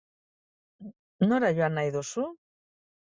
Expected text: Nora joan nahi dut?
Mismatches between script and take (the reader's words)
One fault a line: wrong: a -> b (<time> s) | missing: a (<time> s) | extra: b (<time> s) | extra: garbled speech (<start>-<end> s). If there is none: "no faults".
wrong: dut -> duzu (2.0 s)